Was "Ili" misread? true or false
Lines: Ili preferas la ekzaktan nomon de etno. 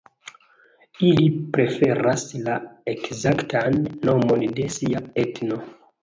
false